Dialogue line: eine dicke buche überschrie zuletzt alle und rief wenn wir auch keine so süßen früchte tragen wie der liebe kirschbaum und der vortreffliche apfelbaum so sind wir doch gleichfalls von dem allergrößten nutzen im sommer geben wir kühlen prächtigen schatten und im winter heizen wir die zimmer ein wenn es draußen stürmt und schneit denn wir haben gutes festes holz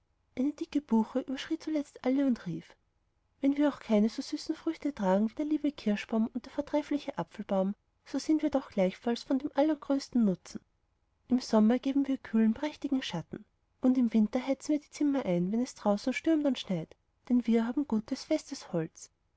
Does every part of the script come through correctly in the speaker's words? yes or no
yes